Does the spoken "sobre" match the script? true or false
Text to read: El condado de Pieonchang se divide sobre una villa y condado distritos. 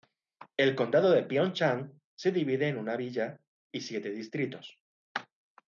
false